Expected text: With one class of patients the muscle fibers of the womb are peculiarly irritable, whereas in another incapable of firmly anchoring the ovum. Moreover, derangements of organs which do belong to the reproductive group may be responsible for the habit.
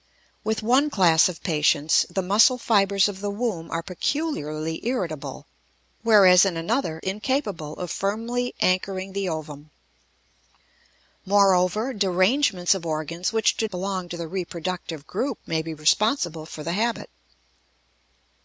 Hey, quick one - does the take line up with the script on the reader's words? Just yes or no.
yes